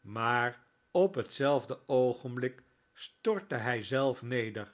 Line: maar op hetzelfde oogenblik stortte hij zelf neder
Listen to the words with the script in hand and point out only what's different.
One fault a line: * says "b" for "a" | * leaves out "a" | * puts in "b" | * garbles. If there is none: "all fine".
all fine